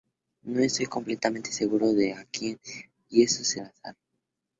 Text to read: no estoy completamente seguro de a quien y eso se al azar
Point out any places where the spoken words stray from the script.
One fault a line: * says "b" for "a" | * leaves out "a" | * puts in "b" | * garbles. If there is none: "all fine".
all fine